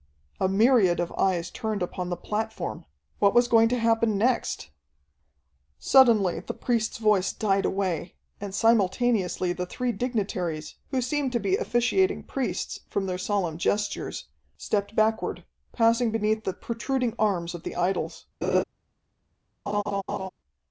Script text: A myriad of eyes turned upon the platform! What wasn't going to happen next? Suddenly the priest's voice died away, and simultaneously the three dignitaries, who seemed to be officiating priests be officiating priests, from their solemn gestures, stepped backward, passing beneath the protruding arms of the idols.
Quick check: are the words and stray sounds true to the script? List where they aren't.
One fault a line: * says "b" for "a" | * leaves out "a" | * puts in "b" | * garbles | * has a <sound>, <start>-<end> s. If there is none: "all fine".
* says "was" for "wasn't"
* leaves out "be officiating priests"
* has a laugh, 18.4-18.6 s
* has a laugh, 19.7-20.3 s